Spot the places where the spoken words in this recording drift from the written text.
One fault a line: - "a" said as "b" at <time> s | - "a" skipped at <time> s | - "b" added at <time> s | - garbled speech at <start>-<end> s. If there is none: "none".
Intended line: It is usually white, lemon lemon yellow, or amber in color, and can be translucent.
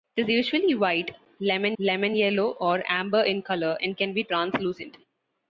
none